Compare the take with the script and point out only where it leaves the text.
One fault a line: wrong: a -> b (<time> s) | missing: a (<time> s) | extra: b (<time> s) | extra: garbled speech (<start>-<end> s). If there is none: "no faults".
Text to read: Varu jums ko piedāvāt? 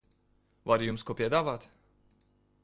no faults